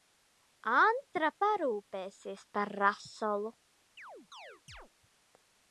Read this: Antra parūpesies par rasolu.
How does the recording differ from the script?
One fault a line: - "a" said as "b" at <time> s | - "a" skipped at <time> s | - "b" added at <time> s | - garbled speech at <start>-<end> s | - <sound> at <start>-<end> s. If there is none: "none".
- chirp at 4.0-4.9 s